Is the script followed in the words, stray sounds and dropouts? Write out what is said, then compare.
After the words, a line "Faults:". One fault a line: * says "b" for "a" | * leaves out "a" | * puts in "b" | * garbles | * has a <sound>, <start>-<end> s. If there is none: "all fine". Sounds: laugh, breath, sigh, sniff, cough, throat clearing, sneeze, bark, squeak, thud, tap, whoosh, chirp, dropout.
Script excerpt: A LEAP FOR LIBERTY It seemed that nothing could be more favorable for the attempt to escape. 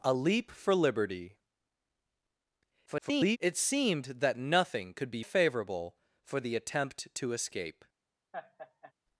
A LEAP FOR LIBERTY [garbled] It seemed that nothing could be favorable for the attempt to escape.
Faults:
* garbles
* leaves out "more"
* has a laugh, 8.3-8.9 s